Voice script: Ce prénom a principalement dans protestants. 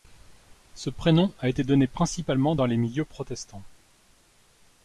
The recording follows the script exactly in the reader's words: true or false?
false